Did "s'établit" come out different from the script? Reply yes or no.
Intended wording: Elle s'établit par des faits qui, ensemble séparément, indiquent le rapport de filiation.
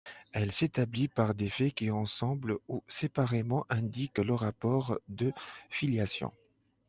no